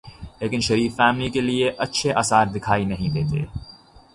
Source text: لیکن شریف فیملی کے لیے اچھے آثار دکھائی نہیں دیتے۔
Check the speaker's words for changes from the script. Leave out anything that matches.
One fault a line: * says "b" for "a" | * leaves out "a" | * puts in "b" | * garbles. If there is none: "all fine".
all fine